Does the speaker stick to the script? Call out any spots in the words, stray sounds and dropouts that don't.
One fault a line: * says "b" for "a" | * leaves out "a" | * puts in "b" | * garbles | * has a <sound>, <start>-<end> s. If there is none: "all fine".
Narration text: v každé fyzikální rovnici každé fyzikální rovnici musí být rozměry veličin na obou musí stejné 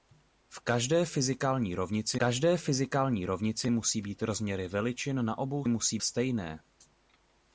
all fine